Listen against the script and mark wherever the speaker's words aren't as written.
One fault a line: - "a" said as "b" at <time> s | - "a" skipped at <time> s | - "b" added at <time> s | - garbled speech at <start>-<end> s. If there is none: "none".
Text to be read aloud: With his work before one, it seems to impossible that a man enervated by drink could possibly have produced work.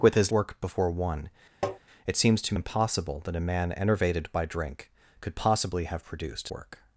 none